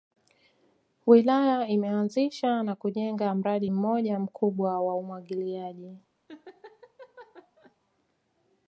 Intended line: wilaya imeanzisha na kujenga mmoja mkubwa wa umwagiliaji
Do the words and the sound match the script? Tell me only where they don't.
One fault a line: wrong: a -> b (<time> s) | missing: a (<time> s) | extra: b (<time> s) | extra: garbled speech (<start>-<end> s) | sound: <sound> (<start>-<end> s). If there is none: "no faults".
extra: mradi (3.4 s)
sound: laugh (6.3-7.8 s)